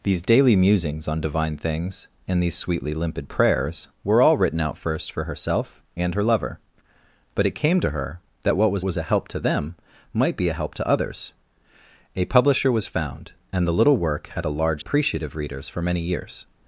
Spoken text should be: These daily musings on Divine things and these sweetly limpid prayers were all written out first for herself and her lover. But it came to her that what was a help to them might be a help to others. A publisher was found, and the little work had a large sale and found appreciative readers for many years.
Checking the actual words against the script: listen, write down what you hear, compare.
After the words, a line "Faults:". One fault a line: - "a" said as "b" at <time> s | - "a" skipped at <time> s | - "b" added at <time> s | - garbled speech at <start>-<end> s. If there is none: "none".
These daily musings on Divine things and these sweetly limpid prayers were all written out first for herself and her lover. But it came to her that what was was a help to them might be a help to others. A publisher was found, and the little work had a large appreciative readers for many years.
Faults:
- "was" added at 8.8 s
- "sale and found" skipped at 14.8 s